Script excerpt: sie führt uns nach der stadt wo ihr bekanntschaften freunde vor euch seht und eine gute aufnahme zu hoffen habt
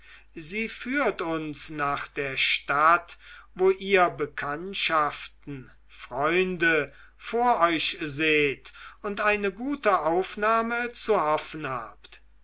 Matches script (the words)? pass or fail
pass